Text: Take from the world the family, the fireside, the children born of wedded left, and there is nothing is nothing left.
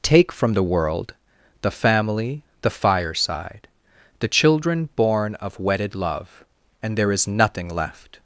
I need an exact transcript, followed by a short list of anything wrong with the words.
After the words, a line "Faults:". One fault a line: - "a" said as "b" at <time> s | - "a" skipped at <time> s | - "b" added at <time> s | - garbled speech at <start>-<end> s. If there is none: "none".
Take from the world the family, the fireside, the children born of wedded love, and there is nothing left.
Faults:
- "left" said as "love" at 5.9 s
- "is nothing" skipped at 7.7 s